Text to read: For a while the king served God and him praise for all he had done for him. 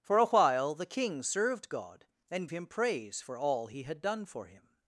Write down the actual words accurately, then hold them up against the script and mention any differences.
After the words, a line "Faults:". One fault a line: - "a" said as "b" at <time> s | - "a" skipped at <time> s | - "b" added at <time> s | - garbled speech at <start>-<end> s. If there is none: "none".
For a while the king served God and him praise for all he had done for him.
Faults:
none